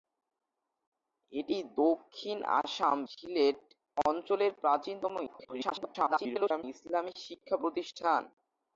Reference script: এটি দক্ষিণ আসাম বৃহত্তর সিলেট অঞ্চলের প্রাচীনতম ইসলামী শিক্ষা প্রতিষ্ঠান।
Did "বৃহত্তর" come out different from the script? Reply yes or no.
yes